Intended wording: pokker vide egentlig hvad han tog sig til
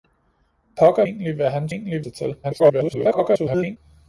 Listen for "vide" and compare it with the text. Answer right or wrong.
wrong